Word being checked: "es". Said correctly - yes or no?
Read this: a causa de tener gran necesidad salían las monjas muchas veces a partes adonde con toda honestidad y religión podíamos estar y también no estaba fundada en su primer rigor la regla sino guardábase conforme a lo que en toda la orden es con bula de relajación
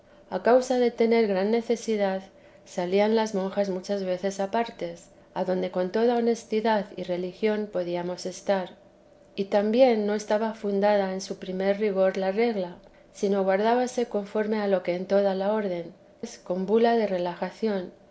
yes